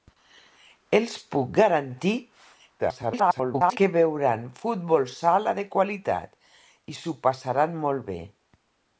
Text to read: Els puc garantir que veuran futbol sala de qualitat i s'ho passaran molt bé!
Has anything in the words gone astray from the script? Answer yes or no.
yes